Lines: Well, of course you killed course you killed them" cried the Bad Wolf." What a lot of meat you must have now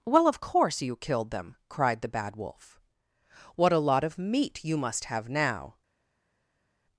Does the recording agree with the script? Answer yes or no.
no